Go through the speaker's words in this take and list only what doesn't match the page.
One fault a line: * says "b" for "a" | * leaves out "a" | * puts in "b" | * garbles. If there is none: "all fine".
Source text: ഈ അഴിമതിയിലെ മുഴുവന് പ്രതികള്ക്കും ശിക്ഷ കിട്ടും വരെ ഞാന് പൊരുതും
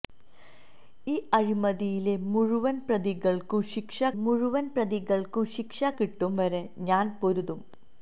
* puts in "മുഴുവന് പ്രതികള്ക്കും ശിക്ഷ"